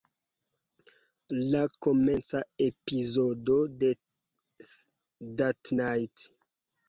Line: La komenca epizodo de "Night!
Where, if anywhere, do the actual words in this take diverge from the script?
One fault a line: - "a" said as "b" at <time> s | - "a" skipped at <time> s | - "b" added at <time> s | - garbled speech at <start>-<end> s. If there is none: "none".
- "That" added at 5.4 s